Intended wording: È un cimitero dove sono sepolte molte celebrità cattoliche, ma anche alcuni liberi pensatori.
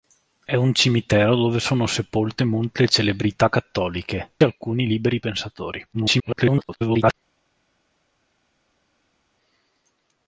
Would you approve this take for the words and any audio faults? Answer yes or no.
no